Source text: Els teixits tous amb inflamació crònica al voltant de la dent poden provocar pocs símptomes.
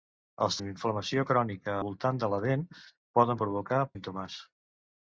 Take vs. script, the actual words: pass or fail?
fail